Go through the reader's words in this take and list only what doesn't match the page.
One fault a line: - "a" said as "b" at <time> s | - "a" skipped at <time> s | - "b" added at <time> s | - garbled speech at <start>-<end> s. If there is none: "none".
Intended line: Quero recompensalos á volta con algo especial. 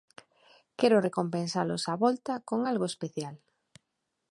none